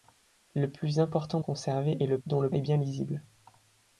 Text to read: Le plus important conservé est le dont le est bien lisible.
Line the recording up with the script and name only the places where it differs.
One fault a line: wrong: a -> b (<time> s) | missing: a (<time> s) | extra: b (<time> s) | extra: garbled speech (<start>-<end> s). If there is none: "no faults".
no faults